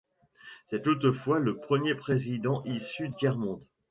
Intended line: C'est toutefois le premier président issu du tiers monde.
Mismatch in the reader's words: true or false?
true